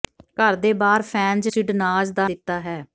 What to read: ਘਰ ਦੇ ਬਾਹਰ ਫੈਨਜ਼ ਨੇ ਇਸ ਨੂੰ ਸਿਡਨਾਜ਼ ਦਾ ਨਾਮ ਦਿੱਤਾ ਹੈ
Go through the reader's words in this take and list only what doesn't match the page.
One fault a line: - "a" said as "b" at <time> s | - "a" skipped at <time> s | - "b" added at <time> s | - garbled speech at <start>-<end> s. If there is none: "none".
- "ਨੇ ਇਸ ਨੂੰ" skipped at 1.5 s
- "ਨਾਮ" skipped at 2.3 s